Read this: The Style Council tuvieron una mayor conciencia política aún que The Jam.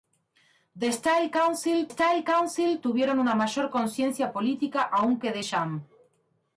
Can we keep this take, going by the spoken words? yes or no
no